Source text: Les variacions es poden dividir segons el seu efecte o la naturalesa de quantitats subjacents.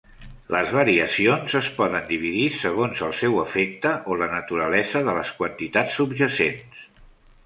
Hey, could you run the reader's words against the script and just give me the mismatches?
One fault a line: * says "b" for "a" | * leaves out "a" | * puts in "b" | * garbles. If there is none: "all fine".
* puts in "les"